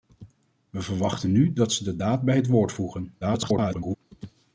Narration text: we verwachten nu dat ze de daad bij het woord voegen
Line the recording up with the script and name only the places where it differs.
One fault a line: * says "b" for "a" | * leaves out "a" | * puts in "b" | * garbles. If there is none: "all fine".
* garbles